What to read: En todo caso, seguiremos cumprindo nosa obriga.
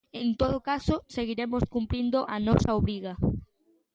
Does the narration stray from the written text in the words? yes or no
yes